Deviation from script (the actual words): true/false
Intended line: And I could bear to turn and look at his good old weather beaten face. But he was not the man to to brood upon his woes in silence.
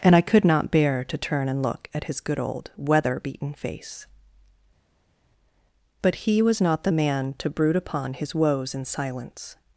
true